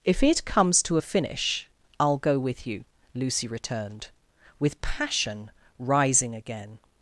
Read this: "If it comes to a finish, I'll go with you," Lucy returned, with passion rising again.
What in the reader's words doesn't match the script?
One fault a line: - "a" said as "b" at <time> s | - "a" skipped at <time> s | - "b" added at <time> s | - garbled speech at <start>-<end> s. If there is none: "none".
none